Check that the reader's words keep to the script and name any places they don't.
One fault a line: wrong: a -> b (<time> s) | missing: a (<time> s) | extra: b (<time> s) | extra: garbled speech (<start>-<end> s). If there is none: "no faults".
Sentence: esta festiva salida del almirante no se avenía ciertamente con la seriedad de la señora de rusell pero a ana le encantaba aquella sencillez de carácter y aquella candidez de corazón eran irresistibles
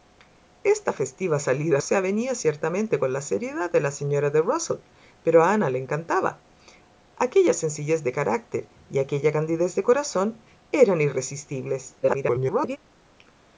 missing: del almirante no (1.8 s)
extra: garbled speech (12.0-12.8 s)